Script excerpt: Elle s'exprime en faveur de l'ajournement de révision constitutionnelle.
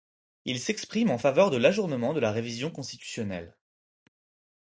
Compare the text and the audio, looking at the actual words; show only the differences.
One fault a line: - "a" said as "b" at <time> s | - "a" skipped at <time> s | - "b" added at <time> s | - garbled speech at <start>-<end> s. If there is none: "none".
- "Elle" said as "Il" at 0.5 s
- "la" added at 2.2 s